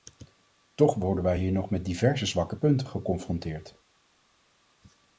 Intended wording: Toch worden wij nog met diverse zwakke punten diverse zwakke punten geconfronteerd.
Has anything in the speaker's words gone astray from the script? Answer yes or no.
yes